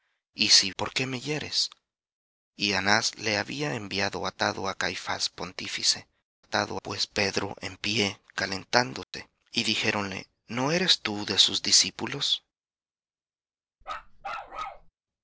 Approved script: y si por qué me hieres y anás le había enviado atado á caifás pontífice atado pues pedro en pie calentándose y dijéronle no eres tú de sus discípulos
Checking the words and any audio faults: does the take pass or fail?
fail